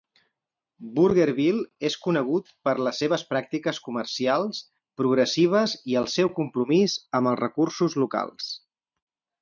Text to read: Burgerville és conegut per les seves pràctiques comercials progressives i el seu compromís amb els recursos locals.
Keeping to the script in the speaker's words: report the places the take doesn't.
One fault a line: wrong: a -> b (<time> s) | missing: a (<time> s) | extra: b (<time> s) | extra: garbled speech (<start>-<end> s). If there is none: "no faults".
no faults